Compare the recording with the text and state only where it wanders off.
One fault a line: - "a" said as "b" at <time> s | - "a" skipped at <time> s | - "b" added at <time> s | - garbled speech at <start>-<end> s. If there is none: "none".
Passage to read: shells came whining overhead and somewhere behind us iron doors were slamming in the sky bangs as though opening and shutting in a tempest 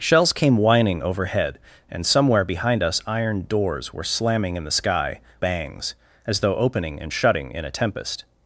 none